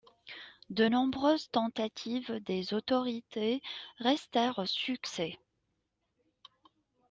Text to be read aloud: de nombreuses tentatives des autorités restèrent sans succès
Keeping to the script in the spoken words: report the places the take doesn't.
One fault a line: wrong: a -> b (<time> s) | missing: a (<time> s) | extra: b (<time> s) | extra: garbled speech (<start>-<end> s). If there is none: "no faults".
missing: sans (4.6 s)